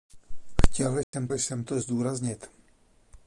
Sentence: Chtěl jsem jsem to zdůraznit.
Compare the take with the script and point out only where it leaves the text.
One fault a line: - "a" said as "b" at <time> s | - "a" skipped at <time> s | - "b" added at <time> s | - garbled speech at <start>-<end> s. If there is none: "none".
none